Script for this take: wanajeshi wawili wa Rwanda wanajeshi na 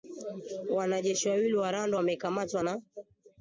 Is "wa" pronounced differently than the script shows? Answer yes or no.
no